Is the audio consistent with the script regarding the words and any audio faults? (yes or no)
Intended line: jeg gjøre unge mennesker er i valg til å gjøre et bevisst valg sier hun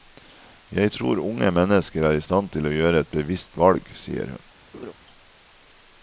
no